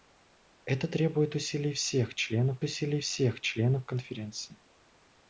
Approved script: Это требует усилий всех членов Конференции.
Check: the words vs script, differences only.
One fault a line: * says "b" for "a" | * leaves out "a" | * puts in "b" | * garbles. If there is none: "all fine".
* puts in "усилий всех членов"